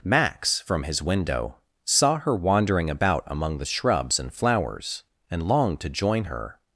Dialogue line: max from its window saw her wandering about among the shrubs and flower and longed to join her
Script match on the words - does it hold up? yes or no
no